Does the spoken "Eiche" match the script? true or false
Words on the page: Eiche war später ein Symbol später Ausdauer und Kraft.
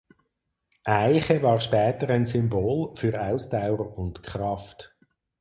true